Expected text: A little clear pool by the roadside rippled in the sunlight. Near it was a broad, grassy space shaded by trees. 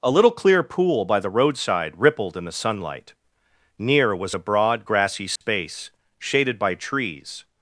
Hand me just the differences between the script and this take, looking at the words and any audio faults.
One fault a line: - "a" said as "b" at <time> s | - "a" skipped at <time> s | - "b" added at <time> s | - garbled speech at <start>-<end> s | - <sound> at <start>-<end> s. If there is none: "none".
- "it" skipped at 4.2 s
- dropout at 5.4-5.4 s